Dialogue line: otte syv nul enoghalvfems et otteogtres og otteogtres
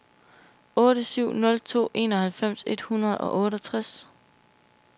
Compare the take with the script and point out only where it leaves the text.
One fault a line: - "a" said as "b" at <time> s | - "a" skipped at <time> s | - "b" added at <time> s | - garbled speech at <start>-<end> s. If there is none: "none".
- "to" added at 1.6 s
- "otteogtres" said as "hundrede" at 2.8 s